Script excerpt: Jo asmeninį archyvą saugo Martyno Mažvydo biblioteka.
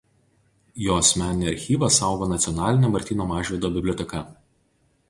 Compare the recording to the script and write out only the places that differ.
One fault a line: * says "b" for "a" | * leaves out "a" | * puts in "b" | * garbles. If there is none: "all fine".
* puts in "Nacionalinė"